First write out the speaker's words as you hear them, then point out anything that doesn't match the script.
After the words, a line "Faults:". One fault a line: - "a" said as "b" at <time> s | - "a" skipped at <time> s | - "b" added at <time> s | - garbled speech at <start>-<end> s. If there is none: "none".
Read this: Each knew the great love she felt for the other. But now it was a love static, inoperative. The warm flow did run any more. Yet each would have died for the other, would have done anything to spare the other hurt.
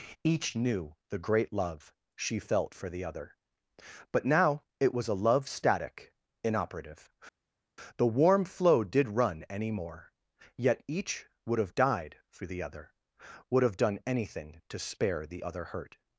Each knew the great love she felt for the other. But now it was a love static, inoperative. The warm flow did run any more. Yet each would have died for the other, would have done anything to spare the other hurt.
Faults:
none